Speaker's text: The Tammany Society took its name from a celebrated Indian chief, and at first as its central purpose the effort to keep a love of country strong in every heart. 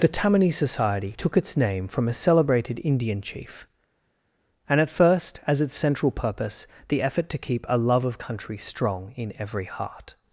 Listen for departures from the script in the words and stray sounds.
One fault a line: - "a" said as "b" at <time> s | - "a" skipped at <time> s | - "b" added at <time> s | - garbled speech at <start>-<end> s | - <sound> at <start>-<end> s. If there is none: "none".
none